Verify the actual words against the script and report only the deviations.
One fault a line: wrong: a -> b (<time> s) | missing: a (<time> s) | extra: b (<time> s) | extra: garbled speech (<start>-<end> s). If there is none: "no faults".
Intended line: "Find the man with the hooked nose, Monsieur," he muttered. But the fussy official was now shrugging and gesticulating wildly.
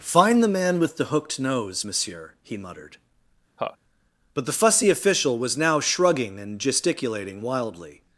no faults